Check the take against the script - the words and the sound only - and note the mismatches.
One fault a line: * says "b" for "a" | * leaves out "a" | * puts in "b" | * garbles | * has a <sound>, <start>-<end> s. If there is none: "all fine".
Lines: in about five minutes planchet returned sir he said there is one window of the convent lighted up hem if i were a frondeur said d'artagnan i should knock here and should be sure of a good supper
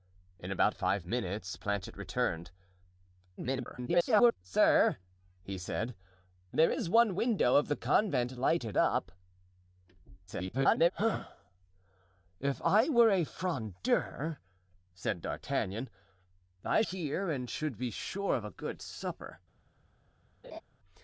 * garbles
* garbles
* leaves out "should knock"
* has a laugh, 20.4-20.6 s